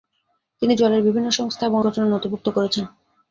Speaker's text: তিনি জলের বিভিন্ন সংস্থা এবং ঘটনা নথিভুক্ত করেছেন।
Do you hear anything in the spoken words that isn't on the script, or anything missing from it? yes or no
no